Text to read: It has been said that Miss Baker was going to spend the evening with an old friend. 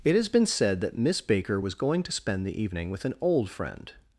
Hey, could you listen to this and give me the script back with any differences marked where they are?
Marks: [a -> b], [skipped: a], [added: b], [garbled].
It has been said that Miss Baker was going to spend the evening with an old friend.